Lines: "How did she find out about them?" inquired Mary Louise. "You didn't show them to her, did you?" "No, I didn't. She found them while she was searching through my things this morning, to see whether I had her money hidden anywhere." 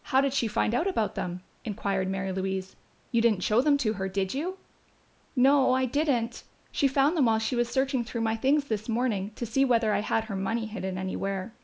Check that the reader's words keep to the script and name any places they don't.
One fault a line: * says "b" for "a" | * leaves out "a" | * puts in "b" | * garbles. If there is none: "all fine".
all fine